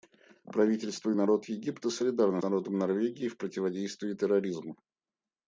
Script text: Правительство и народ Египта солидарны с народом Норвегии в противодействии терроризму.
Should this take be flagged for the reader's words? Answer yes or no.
yes